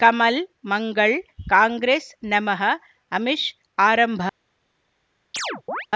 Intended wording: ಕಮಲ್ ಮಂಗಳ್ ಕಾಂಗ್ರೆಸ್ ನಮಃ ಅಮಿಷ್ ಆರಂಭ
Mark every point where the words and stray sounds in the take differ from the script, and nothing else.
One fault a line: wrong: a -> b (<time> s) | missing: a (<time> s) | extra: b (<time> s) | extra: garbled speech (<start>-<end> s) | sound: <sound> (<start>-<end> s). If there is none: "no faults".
sound: chirp (5.3-5.9 s)